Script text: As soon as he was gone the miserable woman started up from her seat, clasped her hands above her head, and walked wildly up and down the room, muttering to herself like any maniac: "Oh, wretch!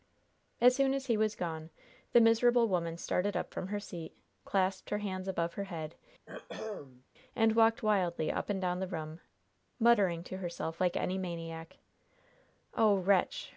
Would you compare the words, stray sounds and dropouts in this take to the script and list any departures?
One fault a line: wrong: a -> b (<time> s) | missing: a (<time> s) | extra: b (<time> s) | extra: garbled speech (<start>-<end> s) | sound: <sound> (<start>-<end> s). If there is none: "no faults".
sound: throat clearing (6.3-7.1 s)